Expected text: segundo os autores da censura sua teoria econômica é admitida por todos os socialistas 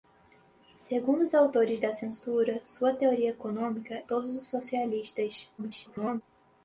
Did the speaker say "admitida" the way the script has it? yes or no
no